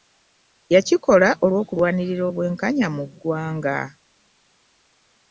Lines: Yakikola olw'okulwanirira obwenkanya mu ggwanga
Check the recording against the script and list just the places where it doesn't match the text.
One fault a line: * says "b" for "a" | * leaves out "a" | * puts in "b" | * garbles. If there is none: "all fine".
all fine